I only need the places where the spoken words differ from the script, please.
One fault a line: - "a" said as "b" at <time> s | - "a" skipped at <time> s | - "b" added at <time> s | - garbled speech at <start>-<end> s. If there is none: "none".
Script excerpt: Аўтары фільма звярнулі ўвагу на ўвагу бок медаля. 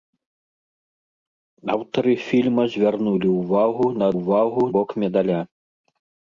none